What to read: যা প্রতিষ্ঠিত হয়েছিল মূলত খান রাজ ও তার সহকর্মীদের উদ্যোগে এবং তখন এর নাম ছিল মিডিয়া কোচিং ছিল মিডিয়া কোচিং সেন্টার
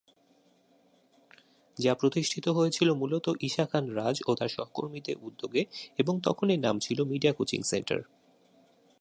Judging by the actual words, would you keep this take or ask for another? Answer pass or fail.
fail